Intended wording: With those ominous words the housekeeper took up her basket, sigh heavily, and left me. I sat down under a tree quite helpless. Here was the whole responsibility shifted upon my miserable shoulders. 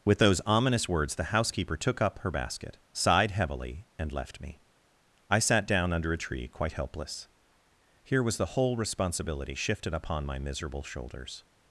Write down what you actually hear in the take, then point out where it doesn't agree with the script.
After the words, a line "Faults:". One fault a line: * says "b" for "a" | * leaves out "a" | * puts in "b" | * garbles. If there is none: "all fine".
With those ominous words the housekeeper took up her basket, sighed heavily, and left me. I sat down under a tree quite helpless. Here was the whole responsibility shifted upon my miserable shoulders.
Faults:
* says "sighed" for "sigh"